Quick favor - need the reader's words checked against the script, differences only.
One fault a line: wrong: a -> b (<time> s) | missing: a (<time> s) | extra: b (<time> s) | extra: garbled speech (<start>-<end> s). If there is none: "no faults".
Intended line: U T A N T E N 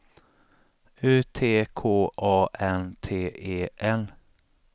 extra: K (1.8 s)